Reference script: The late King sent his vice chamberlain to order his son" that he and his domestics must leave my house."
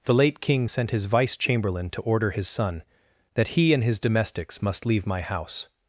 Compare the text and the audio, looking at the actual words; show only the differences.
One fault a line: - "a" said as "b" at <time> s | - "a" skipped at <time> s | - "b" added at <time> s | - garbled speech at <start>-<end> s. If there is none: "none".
none